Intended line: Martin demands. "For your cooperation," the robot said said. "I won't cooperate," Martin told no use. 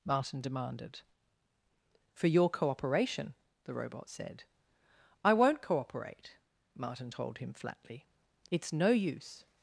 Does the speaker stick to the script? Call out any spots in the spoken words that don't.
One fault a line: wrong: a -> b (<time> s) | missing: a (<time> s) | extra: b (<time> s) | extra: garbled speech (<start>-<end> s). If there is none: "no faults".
wrong: demands -> demanded (0.4 s)
missing: said (4.4 s)
extra: him flatly It's (7.4 s)